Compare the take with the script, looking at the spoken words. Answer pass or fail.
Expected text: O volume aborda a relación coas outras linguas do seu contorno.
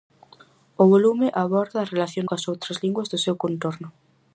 pass